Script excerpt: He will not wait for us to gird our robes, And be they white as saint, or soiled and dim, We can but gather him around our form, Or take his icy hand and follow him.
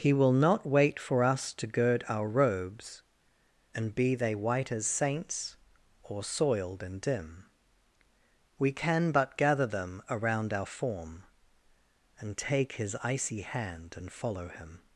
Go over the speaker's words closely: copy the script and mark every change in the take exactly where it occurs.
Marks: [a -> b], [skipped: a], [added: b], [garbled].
He will not wait for us to gird our robes, And be they white as [saint, -> saints] or soiled and dim, We can but gather [him -> them] around our form, [Or -> And] take his icy hand and follow him.